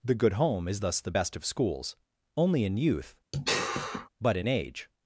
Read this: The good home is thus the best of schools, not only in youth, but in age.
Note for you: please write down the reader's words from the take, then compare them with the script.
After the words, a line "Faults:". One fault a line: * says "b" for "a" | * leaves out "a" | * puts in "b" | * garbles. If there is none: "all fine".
The good home is thus the best of schools, only in youth, but in age.
Faults:
* leaves out "not"